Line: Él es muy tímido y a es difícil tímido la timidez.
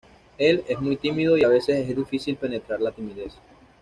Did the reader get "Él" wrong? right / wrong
right